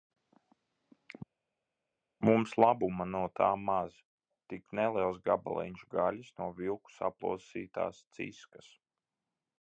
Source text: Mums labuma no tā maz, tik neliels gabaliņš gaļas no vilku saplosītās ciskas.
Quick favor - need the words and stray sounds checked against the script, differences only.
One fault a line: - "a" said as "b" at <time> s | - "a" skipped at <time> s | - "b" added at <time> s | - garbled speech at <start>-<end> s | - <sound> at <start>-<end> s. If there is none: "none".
none